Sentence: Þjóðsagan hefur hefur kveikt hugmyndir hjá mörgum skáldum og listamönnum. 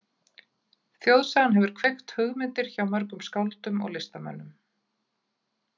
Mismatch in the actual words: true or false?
true